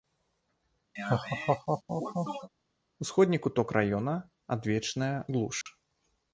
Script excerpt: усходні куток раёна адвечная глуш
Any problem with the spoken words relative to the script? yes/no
no